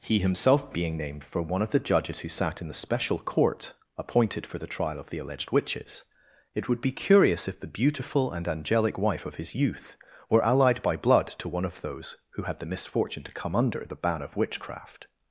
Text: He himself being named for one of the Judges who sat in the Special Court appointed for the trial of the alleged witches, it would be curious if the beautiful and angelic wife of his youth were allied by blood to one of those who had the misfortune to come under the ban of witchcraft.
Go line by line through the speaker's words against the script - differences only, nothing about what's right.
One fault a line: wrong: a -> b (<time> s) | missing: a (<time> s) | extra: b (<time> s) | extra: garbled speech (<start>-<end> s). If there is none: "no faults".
no faults